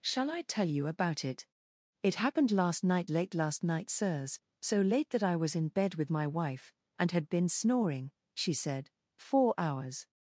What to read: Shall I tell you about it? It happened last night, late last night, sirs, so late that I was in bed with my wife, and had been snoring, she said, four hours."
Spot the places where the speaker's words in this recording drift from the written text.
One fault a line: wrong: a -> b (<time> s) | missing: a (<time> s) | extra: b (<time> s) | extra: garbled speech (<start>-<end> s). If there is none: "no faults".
no faults